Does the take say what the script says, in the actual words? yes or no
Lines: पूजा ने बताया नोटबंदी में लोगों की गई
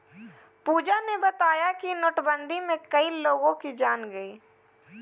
no